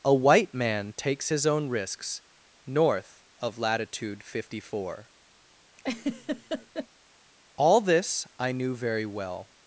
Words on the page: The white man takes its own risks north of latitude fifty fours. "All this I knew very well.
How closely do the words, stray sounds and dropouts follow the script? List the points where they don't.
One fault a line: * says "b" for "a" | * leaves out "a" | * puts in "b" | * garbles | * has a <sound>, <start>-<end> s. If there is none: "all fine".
* says "A" for "The"
* says "his" for "its"
* says "four" for "fours"
* has a laugh, 5.8-6.9 s